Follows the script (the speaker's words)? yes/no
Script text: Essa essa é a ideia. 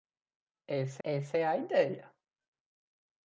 yes